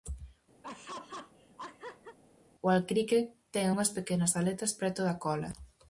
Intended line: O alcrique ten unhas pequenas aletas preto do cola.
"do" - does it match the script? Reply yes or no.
no